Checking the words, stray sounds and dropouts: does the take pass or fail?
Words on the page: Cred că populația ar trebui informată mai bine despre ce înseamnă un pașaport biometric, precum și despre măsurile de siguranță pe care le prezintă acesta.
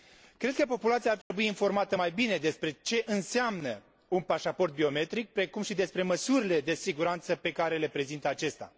fail